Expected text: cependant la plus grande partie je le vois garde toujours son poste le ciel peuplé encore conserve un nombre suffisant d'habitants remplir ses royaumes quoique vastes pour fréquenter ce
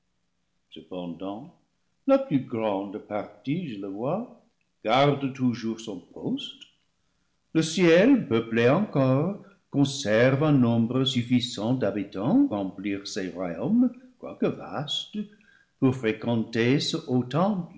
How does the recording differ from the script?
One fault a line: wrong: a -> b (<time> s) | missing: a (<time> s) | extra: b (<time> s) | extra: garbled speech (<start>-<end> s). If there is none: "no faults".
no faults